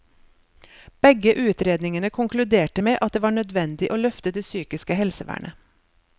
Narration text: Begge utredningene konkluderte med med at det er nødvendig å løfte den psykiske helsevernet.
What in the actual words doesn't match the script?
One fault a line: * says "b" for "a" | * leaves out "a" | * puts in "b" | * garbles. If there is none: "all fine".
* leaves out "med"
* says "var" for "er"
* says "det" for "den"